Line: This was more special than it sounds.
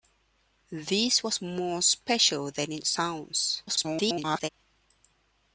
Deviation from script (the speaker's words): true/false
true